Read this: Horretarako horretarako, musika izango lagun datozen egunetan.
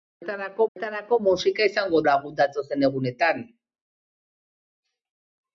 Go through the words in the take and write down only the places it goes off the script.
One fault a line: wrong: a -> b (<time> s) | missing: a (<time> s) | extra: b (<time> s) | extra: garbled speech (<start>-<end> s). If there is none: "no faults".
no faults